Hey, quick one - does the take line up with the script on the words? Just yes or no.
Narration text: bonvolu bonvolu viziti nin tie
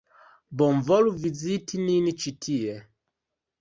no